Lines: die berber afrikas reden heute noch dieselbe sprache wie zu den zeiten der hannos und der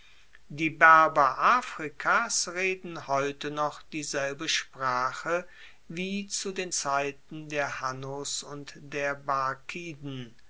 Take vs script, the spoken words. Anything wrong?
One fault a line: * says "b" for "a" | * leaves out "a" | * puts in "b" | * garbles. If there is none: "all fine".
all fine